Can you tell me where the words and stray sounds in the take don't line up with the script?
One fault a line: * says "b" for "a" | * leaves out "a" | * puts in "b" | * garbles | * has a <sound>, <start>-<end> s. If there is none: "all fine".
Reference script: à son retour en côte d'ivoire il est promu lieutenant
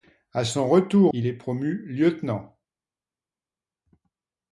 * leaves out "en côte d'ivoire"